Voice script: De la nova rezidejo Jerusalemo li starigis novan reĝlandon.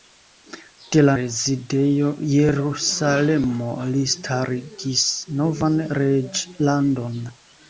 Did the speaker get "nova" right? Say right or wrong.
wrong